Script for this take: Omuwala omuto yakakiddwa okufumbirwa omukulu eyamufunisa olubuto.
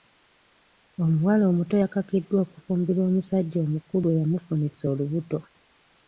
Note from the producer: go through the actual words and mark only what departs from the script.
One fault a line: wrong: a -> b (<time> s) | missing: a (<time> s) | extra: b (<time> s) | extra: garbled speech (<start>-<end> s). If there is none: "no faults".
extra: omusajja (3.1 s)